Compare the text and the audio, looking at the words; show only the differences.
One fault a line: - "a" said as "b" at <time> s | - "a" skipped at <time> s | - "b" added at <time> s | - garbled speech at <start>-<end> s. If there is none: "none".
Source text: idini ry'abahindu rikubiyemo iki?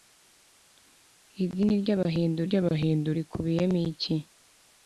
- "ry'abahindu" added at 2.5 s